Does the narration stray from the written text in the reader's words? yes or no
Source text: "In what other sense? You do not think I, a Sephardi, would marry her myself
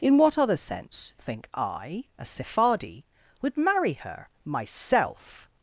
yes